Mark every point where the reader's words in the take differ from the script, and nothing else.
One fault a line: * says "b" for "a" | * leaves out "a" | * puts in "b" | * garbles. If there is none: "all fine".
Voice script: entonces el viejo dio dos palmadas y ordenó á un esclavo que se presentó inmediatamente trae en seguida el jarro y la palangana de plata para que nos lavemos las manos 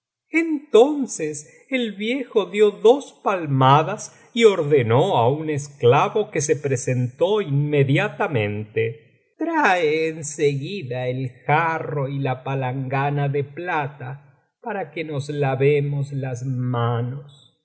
all fine